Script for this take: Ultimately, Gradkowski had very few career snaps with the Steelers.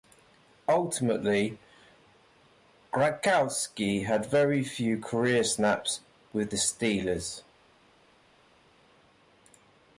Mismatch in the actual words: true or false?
false